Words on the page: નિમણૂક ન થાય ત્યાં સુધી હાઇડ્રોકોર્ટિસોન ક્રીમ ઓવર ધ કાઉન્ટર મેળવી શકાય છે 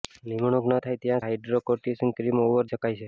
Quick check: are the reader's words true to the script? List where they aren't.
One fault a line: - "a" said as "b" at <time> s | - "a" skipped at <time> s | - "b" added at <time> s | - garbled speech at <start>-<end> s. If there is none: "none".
- "સુધી" skipped at 1.3 s
- "ધ કાઉન્ટર મેળવી" skipped at 2.6 s